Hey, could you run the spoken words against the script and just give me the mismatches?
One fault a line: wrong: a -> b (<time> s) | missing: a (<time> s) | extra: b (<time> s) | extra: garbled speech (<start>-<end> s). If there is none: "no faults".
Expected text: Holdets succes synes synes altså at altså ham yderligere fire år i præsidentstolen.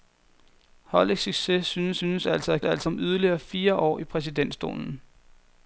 no faults